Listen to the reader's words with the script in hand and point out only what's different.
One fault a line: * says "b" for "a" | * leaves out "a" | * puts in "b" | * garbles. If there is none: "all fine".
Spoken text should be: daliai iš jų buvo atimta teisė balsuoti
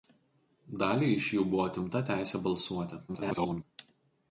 * garbles